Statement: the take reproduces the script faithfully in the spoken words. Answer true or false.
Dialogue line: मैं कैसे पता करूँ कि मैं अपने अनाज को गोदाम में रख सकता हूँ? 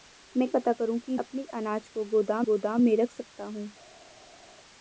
false